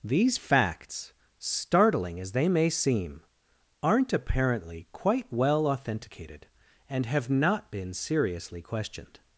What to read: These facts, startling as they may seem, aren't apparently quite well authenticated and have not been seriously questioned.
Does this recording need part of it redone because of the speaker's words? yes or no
no